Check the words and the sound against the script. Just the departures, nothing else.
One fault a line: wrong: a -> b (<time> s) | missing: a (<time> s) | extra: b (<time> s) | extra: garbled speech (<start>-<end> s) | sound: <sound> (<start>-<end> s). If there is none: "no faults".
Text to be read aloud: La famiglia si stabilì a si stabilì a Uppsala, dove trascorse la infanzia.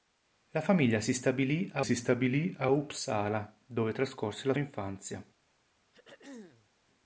sound: throat clearing (5.9-6.7 s)